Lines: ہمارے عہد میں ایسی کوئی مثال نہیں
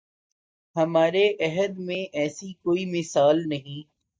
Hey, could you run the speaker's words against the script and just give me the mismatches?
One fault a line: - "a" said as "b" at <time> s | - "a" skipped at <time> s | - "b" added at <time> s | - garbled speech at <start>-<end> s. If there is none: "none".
none